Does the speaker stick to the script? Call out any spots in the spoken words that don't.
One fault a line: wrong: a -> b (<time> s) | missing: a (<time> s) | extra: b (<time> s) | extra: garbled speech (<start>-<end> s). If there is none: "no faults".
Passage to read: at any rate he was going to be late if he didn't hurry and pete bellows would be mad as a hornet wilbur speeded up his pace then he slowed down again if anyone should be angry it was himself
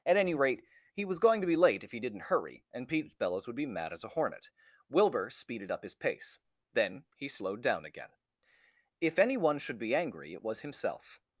no faults